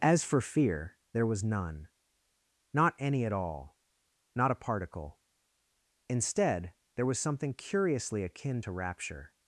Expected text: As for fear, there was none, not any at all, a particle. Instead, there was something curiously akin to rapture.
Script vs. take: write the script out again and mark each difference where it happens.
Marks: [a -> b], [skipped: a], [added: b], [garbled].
As for fear, there was none, not any at all, [added: not] a particle. Instead, there was something curiously akin to rapture.